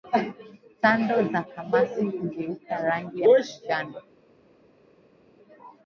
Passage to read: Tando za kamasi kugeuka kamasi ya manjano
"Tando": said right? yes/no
yes